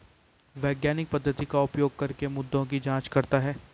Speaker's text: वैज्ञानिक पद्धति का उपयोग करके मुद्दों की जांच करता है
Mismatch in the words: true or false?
false